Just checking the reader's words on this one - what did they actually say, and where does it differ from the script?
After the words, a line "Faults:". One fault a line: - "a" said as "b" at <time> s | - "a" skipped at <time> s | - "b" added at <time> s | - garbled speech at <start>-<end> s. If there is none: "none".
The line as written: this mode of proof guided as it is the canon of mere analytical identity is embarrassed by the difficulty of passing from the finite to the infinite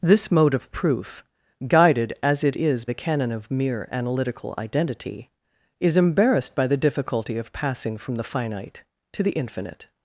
this mode of proof guided as it is the canon of mere analytical identity is embarrassed by the difficulty of passing from the finite to the infinite
Faults:
none